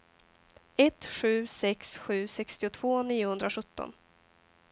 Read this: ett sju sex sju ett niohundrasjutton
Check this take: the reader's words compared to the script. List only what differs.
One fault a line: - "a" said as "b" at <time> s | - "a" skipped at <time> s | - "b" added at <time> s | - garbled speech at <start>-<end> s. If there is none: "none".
- "ett" said as "sextiotvå" at 2.3 s